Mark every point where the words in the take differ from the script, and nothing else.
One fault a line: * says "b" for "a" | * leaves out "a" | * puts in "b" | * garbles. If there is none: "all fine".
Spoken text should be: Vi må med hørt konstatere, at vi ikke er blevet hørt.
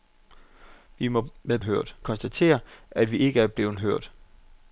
all fine